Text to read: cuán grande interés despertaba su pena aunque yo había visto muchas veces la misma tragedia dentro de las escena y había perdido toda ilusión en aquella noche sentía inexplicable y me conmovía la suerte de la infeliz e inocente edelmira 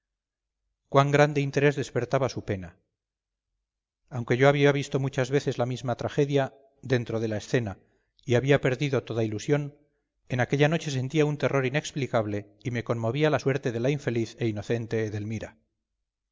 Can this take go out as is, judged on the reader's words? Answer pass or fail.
fail